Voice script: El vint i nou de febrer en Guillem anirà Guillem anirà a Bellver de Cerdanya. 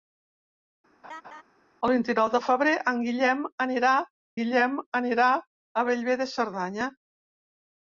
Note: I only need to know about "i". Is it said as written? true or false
true